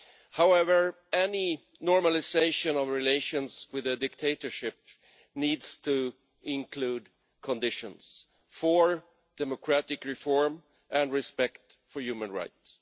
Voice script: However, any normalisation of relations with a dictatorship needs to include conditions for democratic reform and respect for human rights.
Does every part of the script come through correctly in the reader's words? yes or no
yes